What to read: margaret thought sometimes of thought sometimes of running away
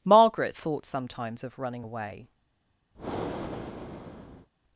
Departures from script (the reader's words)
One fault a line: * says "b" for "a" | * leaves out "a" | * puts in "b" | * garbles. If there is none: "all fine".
* leaves out "thought sometimes of"